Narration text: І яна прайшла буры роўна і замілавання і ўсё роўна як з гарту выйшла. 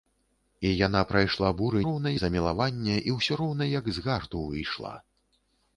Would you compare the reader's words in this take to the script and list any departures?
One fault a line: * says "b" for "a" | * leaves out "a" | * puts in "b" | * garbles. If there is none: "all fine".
all fine